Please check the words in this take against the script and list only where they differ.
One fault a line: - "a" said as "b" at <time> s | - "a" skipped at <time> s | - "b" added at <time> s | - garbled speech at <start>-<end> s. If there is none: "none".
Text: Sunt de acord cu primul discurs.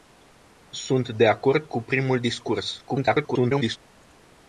- garbled speech at 2.9-3.8 s